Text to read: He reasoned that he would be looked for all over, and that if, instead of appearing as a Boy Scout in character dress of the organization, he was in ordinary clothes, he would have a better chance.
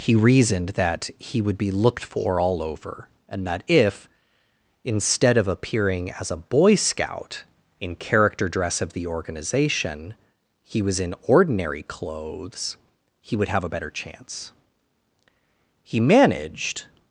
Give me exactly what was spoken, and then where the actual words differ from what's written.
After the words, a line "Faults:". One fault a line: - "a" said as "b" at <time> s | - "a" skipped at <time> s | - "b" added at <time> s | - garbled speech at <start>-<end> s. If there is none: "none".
He reasoned that he would be looked for all over, and that if, instead of appearing as a Boy Scout in character dress of the organization, he was in ordinary clothes, he would have a better chance. He managed
Faults:
- "He managed" added at 15.8 s